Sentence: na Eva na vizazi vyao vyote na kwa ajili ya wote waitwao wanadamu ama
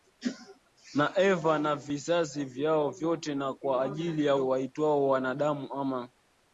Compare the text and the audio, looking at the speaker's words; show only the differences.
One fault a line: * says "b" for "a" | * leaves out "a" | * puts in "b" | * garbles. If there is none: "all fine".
* leaves out "wote"